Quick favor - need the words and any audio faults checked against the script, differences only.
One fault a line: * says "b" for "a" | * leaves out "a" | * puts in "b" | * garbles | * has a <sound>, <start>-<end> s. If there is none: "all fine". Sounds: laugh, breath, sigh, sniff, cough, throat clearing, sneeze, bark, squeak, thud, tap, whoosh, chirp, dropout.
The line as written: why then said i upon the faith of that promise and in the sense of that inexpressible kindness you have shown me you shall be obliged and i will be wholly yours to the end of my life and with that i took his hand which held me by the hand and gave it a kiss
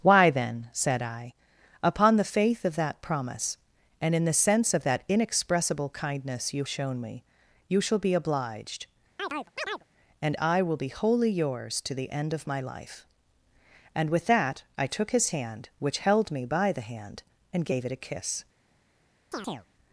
* leaves out "have"
* has a chirp, 9.2-9.8 s
* has a chirp, 19.3-19.7 s